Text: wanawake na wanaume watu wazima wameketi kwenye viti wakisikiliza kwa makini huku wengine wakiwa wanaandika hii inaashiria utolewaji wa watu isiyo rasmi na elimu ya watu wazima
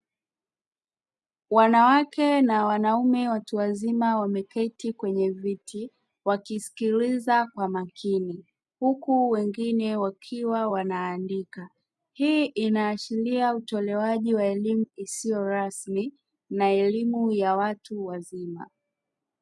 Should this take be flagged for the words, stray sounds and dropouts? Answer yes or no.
yes